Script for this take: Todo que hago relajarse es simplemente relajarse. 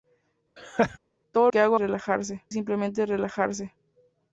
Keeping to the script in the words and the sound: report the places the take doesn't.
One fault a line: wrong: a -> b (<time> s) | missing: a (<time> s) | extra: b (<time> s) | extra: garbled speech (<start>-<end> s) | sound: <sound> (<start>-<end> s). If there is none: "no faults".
sound: laugh (0.6-1.0 s)